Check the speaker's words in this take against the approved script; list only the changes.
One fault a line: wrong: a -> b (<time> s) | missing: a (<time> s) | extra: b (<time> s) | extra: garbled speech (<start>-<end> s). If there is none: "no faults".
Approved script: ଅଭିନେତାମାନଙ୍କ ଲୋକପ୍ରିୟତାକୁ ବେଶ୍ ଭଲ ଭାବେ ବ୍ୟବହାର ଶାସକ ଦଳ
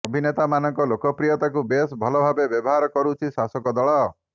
extra: କରୁଛି (3.0 s)